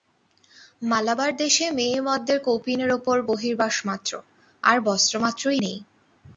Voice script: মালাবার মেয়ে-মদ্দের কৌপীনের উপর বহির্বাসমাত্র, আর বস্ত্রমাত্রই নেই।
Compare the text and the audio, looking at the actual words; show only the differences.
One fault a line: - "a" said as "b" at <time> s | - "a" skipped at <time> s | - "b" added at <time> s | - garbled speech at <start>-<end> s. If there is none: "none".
- "দেশে" added at 1.4 s